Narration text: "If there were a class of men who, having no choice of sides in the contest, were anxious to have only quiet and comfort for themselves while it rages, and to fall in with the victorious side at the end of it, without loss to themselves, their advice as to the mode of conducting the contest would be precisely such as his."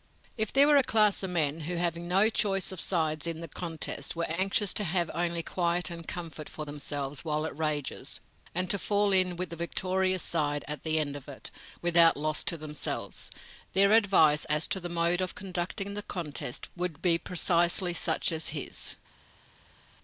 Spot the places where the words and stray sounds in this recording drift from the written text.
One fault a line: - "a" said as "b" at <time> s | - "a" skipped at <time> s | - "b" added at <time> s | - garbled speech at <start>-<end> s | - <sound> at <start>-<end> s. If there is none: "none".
none